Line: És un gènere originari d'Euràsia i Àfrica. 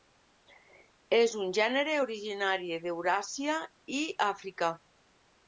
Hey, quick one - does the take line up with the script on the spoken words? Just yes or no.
yes